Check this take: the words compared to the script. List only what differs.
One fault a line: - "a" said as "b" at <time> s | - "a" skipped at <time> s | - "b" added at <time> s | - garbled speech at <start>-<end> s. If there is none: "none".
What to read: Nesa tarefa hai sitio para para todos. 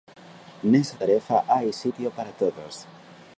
- "para" skipped at 2.3 s